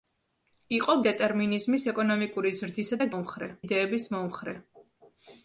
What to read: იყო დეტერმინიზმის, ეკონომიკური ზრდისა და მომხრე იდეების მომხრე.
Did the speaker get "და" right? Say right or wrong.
right